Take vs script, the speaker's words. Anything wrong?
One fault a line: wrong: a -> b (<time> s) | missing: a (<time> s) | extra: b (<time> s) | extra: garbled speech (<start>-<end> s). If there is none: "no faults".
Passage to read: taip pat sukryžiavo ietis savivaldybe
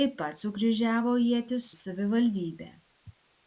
no faults